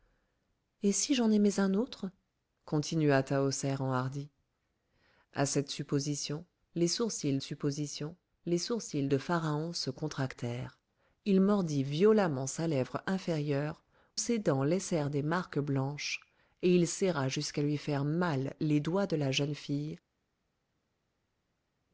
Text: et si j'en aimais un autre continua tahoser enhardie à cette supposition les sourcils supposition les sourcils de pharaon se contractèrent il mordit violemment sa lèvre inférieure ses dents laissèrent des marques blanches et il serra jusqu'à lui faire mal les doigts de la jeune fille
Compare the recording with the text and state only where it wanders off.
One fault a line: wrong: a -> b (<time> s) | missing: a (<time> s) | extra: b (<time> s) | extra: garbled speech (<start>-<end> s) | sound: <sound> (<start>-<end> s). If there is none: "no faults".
no faults